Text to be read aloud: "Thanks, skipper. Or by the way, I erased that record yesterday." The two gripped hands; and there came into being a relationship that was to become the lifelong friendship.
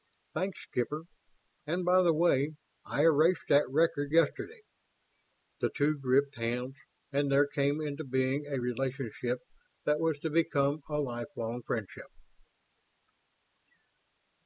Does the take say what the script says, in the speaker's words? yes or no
no